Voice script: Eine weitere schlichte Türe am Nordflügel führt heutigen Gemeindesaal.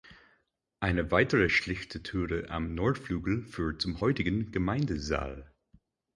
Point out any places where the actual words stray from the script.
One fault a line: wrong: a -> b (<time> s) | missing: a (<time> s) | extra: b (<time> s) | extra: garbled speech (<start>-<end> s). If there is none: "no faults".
extra: zum (3.8 s)